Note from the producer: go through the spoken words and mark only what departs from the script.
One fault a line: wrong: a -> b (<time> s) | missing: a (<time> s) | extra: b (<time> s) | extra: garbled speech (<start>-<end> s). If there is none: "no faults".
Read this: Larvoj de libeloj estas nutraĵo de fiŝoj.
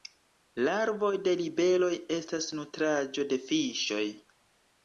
no faults